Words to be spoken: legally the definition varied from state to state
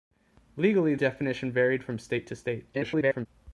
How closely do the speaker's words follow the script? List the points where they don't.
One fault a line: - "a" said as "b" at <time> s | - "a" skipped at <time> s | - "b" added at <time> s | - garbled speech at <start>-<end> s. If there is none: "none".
- "the" skipped at 0.9 s
- garbled speech at 2.7-3.3 s